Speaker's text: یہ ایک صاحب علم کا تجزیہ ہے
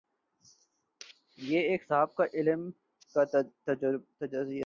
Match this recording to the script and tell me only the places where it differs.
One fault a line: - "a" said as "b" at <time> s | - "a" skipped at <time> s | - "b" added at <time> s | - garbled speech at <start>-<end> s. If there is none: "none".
none